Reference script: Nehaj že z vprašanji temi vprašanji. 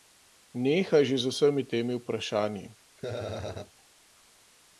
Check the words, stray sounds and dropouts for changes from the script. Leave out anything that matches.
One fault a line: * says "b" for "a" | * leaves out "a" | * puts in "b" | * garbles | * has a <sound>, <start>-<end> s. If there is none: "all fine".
* says "vsemi" for "vprašanji"
* has a laugh, 3.0-3.7 s